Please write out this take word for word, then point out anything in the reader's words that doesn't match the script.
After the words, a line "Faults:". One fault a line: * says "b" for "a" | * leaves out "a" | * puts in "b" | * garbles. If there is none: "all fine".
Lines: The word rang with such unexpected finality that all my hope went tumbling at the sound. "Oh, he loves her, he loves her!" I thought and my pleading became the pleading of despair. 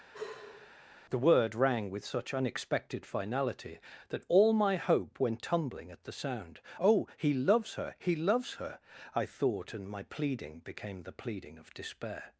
The word rang with such unexpected finality that all my hope went tumbling at the sound. "Oh, he loves her, he loves her!" I thought and my pleading became the pleading of despair.
Faults:
all fine